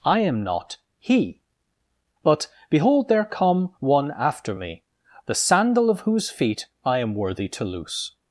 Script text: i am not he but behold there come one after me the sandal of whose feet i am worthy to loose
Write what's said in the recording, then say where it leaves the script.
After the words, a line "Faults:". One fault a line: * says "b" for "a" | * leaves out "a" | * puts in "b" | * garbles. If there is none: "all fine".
i am not he but behold there come one after me the sandal of whose feet i am worthy to loose
Faults:
all fine